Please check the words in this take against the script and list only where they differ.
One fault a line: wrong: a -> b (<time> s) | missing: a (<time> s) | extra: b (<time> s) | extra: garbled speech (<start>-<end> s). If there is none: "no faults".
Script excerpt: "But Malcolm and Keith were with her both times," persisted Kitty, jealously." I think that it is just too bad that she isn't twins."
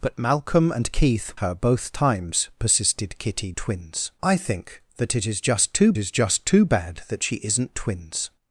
missing: were with (1.3 s)
wrong: jealously -> twins (3.6 s)
extra: is just too (6.0 s)